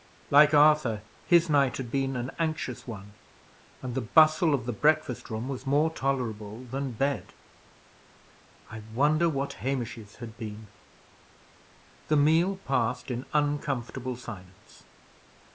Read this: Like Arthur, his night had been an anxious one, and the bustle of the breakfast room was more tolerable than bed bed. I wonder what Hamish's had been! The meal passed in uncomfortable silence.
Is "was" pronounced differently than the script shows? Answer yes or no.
no